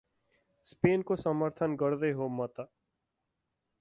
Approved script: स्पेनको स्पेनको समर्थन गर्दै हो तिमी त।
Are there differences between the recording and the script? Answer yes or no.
yes